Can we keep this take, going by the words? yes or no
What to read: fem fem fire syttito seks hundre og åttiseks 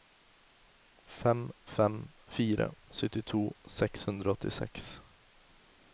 yes